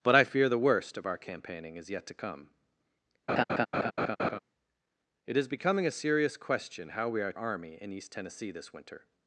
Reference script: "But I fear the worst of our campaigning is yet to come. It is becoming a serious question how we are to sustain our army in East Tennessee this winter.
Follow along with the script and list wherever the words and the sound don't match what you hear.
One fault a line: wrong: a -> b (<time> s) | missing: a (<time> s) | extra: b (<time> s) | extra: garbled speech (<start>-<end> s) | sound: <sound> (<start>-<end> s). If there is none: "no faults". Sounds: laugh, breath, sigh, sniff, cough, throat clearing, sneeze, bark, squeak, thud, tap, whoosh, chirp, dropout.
sound: laugh (3.3-4.4 s)
missing: to sustain our (7.3 s)